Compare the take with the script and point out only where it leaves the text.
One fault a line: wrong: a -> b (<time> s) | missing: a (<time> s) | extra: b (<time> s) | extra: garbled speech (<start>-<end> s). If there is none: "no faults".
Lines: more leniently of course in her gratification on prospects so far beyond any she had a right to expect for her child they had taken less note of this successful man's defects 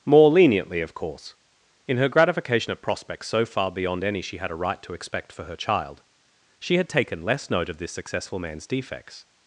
wrong: on -> at (2.7 s)
wrong: they -> she (6.6 s)